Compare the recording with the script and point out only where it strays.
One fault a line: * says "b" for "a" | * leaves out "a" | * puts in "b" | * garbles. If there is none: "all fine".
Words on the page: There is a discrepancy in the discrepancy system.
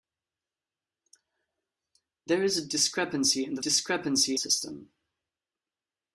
all fine